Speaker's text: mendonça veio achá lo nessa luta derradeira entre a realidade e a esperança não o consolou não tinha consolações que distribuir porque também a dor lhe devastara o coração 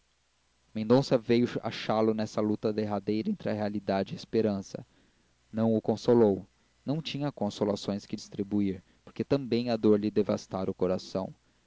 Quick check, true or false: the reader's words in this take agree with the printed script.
true